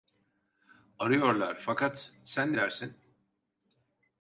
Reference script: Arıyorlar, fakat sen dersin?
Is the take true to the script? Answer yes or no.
yes